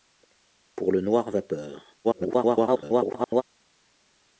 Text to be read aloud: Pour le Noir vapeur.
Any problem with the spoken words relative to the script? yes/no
yes